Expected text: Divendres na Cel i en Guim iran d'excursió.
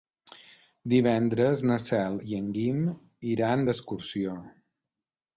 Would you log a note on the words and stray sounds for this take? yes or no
no